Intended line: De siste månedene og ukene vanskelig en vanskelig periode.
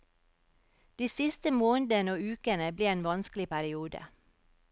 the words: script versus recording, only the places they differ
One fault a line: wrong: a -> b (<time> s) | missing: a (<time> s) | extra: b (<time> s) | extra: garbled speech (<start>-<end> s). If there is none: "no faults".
wrong: vanskelig -> ble (2.8 s)